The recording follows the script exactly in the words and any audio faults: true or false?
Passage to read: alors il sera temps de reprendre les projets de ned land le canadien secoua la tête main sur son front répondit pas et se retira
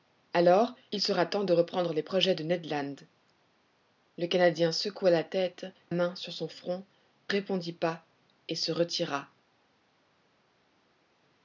true